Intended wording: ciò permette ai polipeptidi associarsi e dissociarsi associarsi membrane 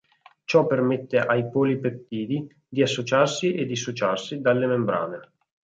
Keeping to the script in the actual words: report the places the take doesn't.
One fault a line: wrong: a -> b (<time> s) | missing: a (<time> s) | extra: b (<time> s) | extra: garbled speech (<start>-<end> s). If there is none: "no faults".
extra: di (2.7 s)
wrong: associarsi -> dalle (4.4 s)